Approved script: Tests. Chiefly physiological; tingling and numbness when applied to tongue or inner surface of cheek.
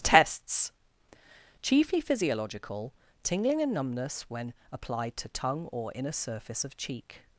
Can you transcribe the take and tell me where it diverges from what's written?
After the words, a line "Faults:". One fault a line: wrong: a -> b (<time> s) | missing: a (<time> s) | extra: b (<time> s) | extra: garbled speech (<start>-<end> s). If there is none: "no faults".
Tests. Chiefly physiological; tingling and numbness when applied to tongue or inner surface of cheek.
Faults:
no faults